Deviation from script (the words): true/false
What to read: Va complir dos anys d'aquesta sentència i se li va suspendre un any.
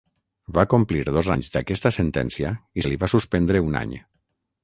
false